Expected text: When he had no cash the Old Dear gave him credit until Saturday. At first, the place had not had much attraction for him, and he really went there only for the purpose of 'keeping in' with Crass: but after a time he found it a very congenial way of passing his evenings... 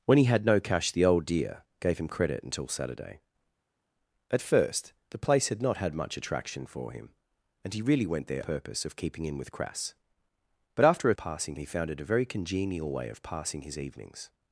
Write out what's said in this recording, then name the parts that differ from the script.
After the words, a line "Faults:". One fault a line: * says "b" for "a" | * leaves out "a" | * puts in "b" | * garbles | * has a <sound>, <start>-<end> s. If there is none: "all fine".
When he had no cash the Old Dear gave him credit until Saturday. At first, the place had not had much attraction for him, and he really went there purpose of 'keeping in' with Crass: but after a passing he found it a very congenial way of passing his evenings...
Faults:
* leaves out "only for the"
* says "passing" for "time"